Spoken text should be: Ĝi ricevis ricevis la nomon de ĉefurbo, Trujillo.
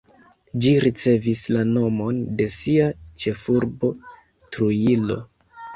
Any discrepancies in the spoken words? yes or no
yes